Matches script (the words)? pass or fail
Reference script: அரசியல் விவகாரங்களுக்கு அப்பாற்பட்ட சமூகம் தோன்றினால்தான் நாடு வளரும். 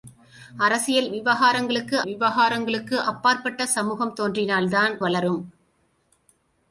fail